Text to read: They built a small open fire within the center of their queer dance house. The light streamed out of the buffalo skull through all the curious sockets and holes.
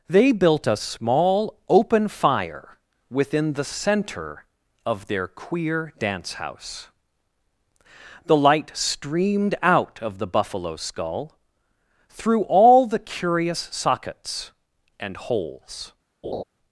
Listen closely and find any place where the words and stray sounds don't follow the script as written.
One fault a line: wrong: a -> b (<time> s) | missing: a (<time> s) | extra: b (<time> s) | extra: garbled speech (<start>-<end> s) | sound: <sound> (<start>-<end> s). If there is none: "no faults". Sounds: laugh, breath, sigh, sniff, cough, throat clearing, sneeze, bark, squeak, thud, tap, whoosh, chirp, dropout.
sound: laugh (16.2-16.4 s)